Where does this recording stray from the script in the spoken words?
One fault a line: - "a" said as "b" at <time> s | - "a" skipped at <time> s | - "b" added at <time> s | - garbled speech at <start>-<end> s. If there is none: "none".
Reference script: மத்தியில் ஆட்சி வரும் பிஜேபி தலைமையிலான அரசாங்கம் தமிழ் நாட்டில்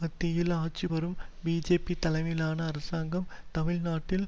none